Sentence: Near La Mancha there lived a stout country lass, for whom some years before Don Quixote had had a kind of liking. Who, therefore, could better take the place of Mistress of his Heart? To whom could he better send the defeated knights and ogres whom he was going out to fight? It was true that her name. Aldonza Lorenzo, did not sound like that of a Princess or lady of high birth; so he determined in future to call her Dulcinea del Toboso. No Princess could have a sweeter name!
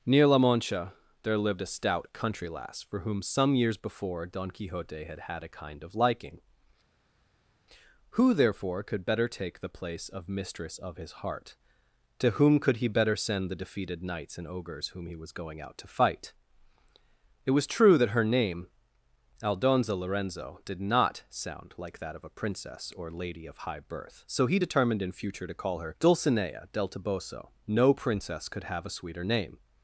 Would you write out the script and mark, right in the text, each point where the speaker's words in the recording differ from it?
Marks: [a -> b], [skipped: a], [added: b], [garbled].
Near La Mancha there lived a stout country lass, for whom some years before Don Quixote had had a kind of liking. Who, therefore, could better take the place of Mistress of his Heart? To whom could he better send the defeated knights and ogres whom he was going out to fight? It was true that her name. Aldonza Lorenzo, did not sound like that of a Princess or lady of high birth; so he determined in future to call her Dulcinea del Toboso. No Princess could have a sweeter name!